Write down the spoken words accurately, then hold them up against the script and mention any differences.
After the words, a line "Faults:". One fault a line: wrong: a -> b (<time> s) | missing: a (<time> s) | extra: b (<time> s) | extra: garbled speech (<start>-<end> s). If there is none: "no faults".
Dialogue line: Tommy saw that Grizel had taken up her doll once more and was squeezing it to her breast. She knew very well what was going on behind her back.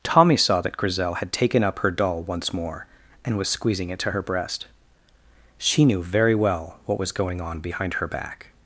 Tommy saw that Grizel had taken up her doll once more and was squeezing it to her breast. She knew very well what was going on behind her back.
Faults:
no faults